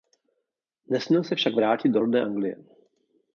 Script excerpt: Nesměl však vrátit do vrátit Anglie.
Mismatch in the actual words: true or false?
true